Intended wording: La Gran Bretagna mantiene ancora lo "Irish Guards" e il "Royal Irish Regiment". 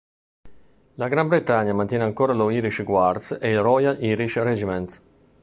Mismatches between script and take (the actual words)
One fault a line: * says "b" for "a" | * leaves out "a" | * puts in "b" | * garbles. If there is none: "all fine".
all fine